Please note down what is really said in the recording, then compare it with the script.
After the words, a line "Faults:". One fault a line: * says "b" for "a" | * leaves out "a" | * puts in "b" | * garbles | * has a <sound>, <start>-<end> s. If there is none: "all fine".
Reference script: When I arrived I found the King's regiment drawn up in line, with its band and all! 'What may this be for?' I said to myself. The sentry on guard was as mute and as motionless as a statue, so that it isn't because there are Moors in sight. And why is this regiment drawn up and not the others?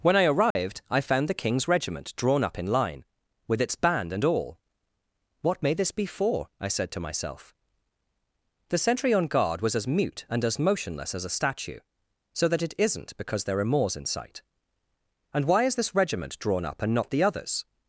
When I arrived I found the King's regiment drawn up in line, with its band and all! 'What may this be for?' I said to myself. The sentry on guard was as mute and as motionless as a statue, so that it isn't because there are Moors in sight. And why is this regiment drawn up and not the others?
Faults:
* has a dropout, 0.5-0.6 s